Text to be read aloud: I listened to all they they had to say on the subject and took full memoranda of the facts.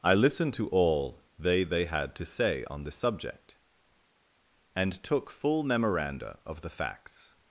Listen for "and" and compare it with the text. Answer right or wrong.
right